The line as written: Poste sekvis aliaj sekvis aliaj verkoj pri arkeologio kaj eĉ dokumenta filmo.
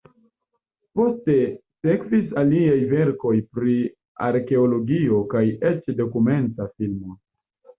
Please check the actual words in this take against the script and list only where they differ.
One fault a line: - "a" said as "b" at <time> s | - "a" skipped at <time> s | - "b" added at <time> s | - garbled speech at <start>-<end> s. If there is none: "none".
- "sekvis aliaj" skipped at 2.8 s